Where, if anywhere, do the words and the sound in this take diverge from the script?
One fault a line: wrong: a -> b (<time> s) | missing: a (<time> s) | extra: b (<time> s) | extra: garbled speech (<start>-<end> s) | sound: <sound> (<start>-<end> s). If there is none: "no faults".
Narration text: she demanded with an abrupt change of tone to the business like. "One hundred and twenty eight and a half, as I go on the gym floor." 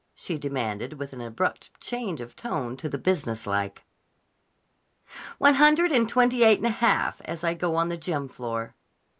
no faults